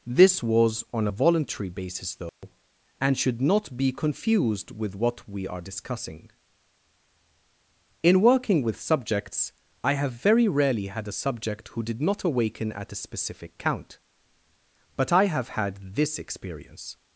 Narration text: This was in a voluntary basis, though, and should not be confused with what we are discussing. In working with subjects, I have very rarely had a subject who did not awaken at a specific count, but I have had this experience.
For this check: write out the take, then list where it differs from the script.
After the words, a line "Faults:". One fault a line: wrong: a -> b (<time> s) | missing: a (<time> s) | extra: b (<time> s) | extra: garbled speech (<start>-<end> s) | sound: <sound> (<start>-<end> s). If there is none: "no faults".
This was on a voluntary basis, though, and should not be confused with what we are discussing. In working with subjects, I have very rarely had a subject who did not awaken at a specific count, but I have had this experience.
Faults:
wrong: in -> on (0.9 s)
sound: dropout (2.3-2.4 s)